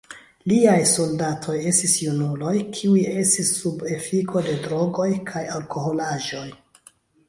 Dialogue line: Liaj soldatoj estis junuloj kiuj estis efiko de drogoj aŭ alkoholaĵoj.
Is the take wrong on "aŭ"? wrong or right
wrong